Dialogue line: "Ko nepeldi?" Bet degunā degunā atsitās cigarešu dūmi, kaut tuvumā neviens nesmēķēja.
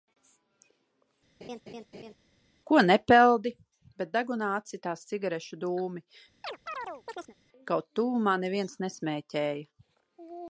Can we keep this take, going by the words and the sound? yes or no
no